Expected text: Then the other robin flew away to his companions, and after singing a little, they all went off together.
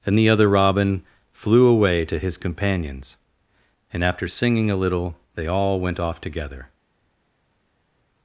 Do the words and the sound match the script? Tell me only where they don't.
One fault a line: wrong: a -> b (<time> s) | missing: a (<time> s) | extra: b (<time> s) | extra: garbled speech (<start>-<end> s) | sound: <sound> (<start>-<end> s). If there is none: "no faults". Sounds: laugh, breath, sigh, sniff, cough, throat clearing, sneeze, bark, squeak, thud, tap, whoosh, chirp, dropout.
wrong: Then -> And (0.1 s)